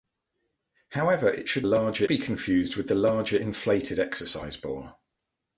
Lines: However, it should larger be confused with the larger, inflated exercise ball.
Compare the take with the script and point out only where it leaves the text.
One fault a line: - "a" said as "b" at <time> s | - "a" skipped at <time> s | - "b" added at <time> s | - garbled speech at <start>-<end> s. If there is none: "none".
none